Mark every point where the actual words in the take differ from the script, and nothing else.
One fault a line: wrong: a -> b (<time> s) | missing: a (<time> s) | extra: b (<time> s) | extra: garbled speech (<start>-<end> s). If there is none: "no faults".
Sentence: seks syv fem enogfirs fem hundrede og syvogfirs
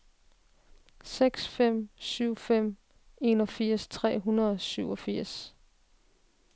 extra: fem (1.5 s)
wrong: fem -> tre (3.9 s)